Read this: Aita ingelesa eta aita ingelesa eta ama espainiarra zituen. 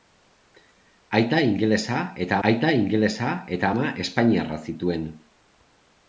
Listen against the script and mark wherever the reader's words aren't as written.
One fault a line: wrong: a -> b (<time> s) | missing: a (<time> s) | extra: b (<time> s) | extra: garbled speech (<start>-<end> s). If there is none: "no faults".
no faults